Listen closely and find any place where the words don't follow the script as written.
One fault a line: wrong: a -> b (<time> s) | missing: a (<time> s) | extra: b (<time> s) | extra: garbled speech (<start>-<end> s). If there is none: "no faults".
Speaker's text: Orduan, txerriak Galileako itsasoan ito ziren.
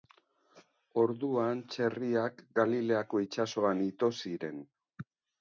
no faults